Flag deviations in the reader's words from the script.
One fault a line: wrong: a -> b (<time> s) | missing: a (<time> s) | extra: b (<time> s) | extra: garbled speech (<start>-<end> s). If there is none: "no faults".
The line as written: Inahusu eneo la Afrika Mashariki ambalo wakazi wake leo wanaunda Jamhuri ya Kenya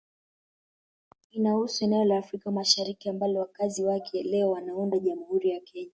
no faults